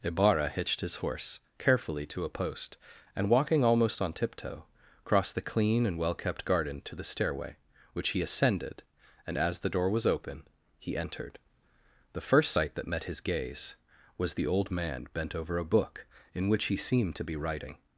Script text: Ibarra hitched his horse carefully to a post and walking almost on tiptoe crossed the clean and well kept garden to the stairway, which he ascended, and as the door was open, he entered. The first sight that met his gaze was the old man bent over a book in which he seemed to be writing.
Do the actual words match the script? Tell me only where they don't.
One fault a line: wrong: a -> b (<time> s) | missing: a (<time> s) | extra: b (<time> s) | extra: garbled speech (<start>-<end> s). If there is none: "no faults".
no faults